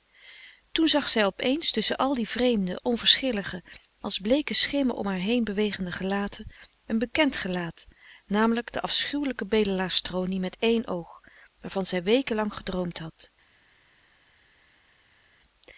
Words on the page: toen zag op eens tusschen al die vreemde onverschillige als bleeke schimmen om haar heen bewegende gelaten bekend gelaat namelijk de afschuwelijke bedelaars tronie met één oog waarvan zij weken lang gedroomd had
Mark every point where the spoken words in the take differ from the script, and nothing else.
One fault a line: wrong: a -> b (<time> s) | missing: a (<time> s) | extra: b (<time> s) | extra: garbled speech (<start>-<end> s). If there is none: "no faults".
extra: zij (1.1 s)
extra: een (6.8 s)